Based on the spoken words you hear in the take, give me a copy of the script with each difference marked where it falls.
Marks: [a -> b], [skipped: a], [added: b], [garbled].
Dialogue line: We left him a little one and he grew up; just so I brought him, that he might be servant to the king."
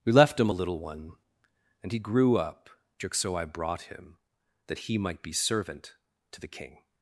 We left him a little one and he grew up; just so I brought him, that he might be servant to the king."